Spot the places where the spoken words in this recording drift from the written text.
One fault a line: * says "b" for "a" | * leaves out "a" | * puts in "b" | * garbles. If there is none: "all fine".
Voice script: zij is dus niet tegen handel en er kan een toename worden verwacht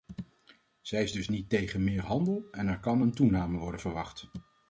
* puts in "meer"